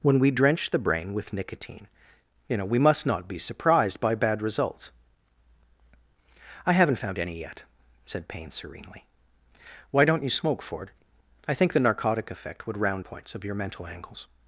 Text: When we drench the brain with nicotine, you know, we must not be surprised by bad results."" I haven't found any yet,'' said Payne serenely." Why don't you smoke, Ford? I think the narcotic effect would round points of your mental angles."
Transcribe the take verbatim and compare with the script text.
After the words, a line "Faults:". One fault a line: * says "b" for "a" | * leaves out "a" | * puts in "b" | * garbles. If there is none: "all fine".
When we drench the brain with nicotine, you know, we must not be surprised by bad results."" I haven't found any yet,'' said Payne serenely." Why don't you smoke, Ford? I think the narcotic effect would round points of your mental angles."
Faults:
all fine